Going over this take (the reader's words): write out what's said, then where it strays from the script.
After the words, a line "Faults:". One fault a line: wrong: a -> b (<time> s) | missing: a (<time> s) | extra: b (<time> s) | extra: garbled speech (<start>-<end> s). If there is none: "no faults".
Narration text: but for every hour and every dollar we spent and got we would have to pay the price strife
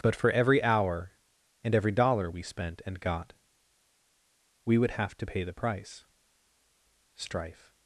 but for every hour and every dollar we spent and got we would have to pay the price strife
Faults:
no faults